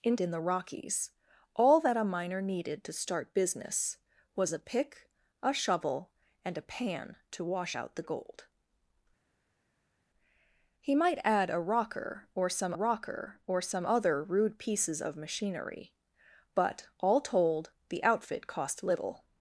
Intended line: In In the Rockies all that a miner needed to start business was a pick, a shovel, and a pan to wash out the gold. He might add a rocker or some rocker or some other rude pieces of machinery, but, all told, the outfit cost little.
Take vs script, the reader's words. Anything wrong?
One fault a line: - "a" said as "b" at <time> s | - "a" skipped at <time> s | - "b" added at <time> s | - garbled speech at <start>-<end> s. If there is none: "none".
none